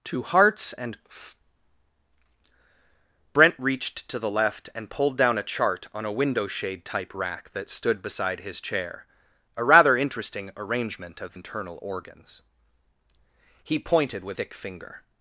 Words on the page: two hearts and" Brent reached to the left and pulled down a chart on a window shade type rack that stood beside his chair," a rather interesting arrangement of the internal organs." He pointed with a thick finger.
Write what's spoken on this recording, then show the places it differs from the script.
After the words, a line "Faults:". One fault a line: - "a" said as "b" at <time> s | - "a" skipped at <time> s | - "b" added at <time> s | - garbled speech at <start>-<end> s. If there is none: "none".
two hearts and" Brent reached to the left and pulled down a chart on a window shade type rack that stood beside his chair," a rather interesting arrangement of internal organs." He pointed with thick finger.
Faults:
- "the" skipped at 11.3 s
- "a" skipped at 14.4 s